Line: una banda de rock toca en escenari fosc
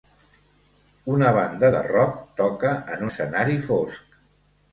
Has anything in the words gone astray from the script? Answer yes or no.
no